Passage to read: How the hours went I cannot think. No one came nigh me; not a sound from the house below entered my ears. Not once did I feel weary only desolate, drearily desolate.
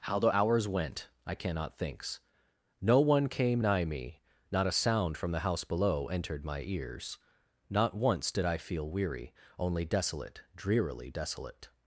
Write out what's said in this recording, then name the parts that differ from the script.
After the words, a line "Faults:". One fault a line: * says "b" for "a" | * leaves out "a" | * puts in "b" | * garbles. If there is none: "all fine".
How the hours went I cannot thinks. No one came nigh me; not a sound from the house below entered my ears. Not once did I feel weary only desolate, drearily desolate.
Faults:
* says "thinks" for "think"